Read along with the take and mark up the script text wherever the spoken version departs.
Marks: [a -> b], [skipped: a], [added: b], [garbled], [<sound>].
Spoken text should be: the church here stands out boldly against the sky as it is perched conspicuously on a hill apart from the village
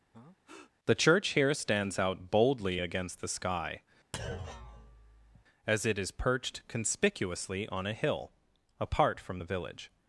[breath] the church here stands out boldly against the sky [thud] as it is perched conspicuously on a hill apart from the village